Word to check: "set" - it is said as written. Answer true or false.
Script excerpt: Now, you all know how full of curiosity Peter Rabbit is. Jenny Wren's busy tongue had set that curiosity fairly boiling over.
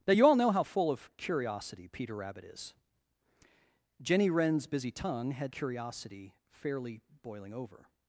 false